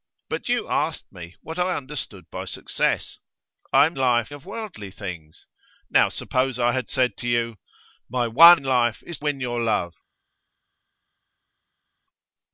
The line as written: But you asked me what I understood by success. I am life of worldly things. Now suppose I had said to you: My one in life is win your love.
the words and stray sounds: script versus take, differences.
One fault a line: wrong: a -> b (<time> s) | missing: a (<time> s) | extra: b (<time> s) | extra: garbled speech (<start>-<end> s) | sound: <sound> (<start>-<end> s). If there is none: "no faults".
no faults